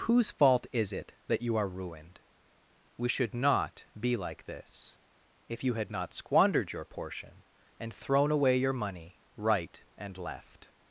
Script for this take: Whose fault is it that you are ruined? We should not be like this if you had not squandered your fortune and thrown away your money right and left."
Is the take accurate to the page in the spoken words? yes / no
no